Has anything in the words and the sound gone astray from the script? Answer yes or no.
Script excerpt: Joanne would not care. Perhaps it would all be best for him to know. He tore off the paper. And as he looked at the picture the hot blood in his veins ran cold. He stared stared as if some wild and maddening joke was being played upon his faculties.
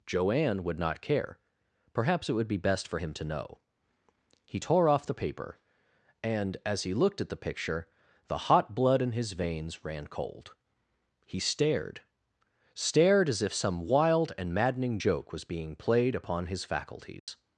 yes